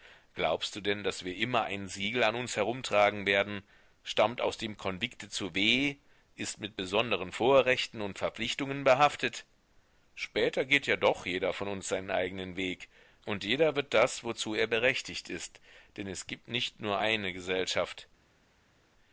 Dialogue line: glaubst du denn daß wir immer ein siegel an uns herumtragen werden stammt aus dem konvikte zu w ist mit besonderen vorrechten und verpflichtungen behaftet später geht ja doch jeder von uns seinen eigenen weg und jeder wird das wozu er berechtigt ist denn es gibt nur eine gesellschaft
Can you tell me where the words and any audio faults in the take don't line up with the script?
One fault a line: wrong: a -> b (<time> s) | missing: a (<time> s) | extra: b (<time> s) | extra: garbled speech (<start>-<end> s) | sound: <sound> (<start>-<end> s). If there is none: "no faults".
extra: nicht (16.5 s)